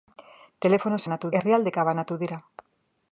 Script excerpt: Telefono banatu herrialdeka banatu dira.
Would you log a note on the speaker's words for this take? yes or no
no